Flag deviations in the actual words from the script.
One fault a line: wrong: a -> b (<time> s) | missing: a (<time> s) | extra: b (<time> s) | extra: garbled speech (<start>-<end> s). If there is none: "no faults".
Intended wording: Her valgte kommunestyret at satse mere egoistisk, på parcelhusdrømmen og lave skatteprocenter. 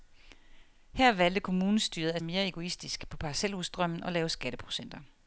missing: satse (2.2 s)